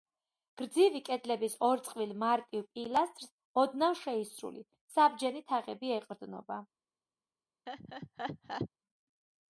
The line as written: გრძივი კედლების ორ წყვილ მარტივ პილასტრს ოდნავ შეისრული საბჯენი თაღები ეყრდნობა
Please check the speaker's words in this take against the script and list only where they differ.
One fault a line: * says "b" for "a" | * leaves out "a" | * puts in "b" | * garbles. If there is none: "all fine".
all fine